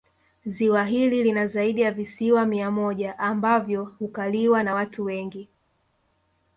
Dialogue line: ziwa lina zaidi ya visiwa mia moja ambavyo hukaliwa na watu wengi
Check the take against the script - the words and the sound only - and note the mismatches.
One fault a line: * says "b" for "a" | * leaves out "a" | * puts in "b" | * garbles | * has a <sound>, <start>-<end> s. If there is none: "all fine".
* puts in "hili"